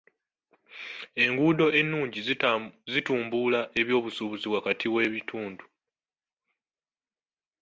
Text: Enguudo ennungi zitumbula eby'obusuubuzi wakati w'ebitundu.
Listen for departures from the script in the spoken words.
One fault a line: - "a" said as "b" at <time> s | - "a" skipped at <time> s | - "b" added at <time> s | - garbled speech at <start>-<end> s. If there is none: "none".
none